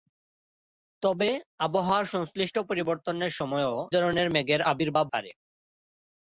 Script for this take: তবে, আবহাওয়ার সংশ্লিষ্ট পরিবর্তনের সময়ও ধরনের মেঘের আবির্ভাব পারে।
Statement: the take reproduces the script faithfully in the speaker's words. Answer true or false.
true